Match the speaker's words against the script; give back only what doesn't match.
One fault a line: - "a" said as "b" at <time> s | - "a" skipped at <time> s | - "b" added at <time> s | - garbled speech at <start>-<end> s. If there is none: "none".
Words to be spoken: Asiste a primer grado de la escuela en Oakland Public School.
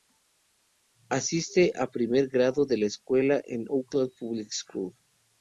none